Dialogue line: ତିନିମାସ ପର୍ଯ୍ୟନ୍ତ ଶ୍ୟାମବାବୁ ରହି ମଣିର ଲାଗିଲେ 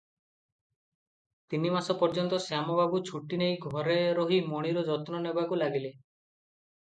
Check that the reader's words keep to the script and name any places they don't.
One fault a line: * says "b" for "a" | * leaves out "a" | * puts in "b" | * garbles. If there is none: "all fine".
* puts in "ଛୁଟି ନେଇ ଘରେ"
* puts in "ଯତ୍ନ ନେବାକୁ"